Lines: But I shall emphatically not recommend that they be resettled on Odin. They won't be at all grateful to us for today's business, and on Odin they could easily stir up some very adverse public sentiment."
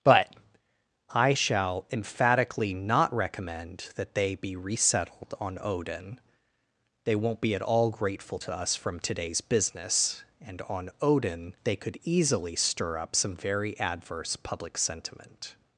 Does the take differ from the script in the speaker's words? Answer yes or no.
yes